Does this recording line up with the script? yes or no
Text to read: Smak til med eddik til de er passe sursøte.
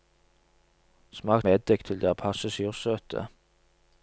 no